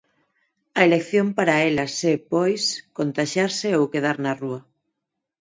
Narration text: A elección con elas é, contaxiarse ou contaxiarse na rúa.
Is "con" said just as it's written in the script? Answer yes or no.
no